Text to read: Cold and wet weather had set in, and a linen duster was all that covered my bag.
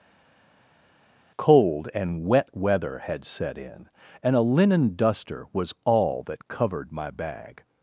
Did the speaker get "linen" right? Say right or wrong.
right